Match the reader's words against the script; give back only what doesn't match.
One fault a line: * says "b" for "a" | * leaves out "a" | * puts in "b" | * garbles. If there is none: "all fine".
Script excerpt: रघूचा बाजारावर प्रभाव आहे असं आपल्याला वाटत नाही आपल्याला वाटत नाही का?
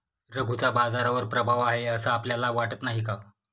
* leaves out "आपल्याला वाटत नाही"